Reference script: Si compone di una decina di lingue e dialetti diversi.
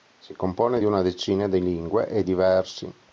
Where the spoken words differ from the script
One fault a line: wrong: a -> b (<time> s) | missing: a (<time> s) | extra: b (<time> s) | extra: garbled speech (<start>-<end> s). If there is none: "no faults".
missing: dialetti (2.2 s)